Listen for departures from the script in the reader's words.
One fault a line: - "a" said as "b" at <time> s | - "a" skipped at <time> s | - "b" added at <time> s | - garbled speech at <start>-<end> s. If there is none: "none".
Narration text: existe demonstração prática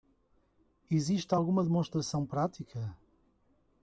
- "alguma" added at 1.3 s